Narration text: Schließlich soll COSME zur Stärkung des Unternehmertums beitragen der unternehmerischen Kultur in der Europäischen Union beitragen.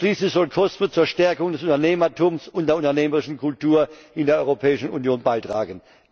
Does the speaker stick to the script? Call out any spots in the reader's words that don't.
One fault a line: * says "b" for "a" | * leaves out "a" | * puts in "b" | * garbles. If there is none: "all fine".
* says "und" for "beitragen"